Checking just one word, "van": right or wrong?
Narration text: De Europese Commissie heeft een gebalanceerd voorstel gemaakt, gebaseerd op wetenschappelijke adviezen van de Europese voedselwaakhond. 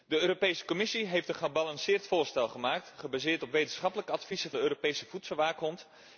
wrong